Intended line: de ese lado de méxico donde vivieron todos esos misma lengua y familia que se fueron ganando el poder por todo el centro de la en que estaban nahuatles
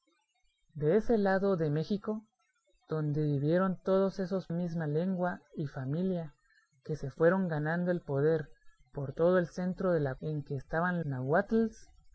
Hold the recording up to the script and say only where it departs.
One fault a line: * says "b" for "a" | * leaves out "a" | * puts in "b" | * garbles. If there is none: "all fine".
all fine